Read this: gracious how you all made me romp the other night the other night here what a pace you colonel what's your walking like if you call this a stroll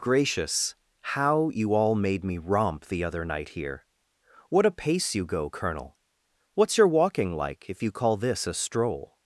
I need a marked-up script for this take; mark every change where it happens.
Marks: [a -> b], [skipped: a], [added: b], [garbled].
gracious how you all made me romp the other night [skipped: the other night] here what a pace you [added: go] colonel what's your walking like if you call this a stroll